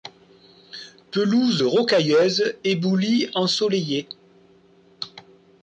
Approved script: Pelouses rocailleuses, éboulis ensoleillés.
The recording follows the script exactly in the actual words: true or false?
true